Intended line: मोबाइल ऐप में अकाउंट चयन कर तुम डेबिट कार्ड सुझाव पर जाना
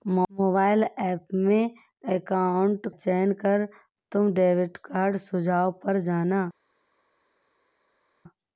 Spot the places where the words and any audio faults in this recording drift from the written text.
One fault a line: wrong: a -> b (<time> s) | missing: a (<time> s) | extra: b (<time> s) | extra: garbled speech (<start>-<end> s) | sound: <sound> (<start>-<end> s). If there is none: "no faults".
no faults